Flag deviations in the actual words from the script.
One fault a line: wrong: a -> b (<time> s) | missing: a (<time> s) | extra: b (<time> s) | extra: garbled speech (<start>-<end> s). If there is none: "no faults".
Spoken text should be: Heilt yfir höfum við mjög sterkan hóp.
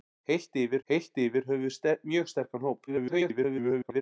extra: heilt yfir (0.9 s)
extra: garbled speech (2.9-4.0 s)